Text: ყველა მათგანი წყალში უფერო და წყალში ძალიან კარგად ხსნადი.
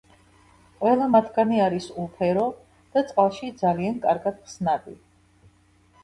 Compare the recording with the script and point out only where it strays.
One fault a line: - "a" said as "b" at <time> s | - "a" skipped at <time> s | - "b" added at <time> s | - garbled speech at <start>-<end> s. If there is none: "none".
- "წყალში" said as "არის" at 1.6 s